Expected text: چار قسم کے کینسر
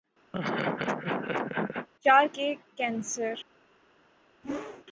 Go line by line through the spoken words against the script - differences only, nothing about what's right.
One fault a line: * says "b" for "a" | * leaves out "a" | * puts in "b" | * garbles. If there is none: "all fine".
* leaves out "قسم"